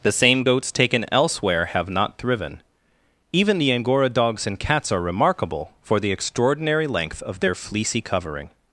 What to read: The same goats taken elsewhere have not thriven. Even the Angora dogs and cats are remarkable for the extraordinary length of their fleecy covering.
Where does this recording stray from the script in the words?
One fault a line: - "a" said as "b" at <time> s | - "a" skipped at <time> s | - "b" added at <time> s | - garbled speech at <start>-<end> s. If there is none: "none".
none